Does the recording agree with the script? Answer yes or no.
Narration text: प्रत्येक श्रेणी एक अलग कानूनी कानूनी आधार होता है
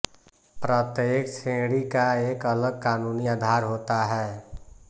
no